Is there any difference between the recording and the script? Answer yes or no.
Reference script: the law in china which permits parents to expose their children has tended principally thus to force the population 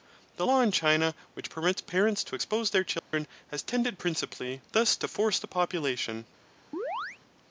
no